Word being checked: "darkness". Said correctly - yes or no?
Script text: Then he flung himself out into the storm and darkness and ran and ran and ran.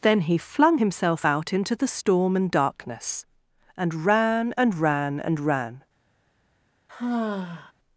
yes